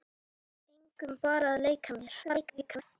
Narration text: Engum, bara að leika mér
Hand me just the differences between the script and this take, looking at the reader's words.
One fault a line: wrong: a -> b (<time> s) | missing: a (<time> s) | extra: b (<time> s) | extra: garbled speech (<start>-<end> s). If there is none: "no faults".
extra: garbled speech (2.2-2.8 s)